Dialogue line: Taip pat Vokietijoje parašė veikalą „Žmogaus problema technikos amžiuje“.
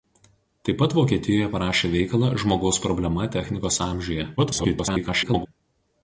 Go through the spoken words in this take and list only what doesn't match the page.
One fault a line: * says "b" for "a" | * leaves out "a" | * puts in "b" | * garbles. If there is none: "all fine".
* garbles